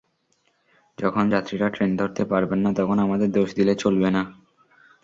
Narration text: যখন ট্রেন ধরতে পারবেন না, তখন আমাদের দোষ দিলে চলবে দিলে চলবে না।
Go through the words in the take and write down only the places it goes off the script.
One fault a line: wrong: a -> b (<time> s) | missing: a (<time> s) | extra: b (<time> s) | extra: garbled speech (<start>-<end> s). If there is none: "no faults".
extra: যাত্রীরা (1.3 s)
missing: দিলে চলবে (4.1 s)